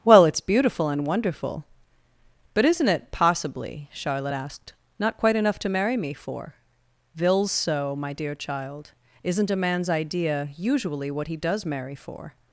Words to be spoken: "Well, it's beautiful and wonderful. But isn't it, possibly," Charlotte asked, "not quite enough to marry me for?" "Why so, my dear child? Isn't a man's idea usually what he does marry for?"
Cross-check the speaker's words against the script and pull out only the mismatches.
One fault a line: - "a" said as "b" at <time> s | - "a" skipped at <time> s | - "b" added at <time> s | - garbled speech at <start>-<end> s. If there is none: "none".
- "Why" said as "Vils" at 7.1 s